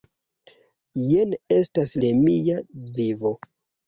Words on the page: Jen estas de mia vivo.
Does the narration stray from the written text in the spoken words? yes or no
no